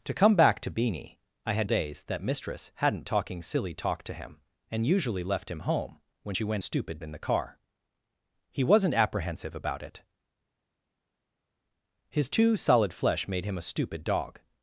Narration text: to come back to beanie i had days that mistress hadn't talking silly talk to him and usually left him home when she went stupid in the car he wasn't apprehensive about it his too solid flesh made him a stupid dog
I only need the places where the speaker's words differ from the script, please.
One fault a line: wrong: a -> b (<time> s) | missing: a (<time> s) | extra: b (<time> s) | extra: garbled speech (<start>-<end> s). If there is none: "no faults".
no faults